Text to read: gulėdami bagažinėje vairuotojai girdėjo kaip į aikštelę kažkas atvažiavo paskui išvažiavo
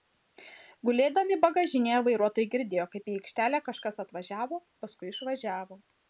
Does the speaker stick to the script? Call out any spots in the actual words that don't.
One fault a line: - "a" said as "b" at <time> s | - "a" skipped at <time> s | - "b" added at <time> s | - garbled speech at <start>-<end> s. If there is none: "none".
none